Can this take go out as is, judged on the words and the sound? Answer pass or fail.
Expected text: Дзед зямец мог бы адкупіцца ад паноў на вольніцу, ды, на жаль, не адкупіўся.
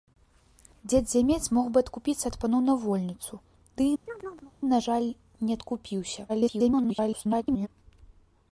fail